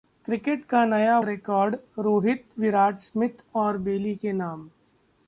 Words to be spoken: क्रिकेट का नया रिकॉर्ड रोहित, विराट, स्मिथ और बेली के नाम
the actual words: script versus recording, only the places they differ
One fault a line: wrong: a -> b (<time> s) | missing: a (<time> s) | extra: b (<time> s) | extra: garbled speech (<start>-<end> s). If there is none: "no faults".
no faults